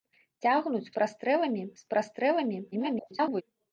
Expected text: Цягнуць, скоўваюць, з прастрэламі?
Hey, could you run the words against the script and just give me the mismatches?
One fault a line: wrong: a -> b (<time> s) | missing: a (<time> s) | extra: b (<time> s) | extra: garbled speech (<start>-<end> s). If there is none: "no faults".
wrong: скоўваюць -> прастрэламі (1.0 s)
extra: garbled speech (2.7-3.4 s)